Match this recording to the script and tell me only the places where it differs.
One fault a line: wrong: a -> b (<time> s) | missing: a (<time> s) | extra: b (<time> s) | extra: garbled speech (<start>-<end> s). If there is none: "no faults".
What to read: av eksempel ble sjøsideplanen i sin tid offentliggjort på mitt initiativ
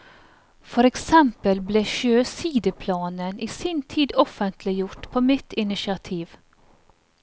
wrong: av -> for (0.7 s)